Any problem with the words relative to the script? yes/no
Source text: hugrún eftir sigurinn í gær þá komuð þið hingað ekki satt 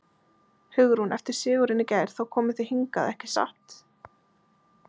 no